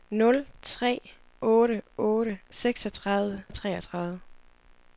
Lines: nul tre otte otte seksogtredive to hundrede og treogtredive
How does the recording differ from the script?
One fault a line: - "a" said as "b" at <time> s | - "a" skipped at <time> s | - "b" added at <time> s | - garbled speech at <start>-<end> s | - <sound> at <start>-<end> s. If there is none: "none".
- "to hundrede" skipped at 3.4 s